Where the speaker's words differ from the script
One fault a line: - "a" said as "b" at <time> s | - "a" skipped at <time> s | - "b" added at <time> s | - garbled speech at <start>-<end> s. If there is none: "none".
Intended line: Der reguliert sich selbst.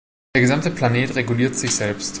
- "gesamte Planet" added at 0.4 s